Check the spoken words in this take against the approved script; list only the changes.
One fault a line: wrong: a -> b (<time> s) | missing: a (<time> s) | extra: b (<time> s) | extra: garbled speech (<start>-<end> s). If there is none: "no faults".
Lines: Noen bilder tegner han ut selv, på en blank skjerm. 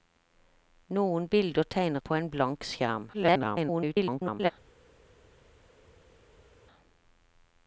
missing: han ut selv (2.0 s)
extra: garbled speech (3.1-4.5 s)